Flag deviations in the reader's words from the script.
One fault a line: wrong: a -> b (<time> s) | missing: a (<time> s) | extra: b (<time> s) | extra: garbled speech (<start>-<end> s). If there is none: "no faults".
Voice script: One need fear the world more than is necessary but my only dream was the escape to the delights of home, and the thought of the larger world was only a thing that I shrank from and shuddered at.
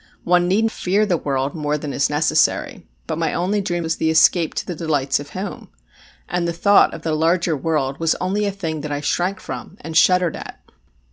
no faults